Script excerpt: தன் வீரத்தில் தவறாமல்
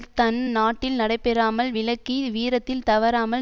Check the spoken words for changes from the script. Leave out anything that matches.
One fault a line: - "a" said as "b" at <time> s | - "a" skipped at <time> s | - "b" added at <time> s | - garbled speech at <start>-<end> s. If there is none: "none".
- "நாட்டில் நடைபெறாமல் விலக்கி" added at 0.5 s